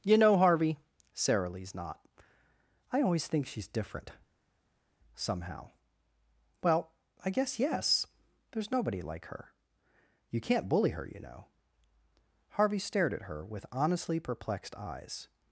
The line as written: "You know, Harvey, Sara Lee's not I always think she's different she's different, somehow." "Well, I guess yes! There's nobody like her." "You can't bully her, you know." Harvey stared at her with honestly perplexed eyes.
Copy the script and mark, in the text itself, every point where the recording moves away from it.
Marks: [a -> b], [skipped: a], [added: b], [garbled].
"You know, Harvey, Sara Lee's not I always think she's different [skipped: she's different,] somehow." "Well, I guess yes! There's nobody like her." "You can't bully her, you know." Harvey stared at her with honestly perplexed eyes.